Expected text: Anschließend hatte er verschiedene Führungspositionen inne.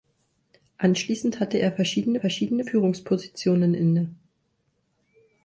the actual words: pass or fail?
fail